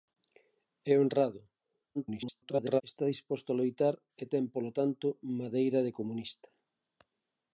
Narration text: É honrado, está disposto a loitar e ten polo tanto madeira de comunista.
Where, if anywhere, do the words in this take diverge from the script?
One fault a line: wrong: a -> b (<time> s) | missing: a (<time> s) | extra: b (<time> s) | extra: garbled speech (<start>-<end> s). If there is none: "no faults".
extra: garbled speech (1.9-2.8 s)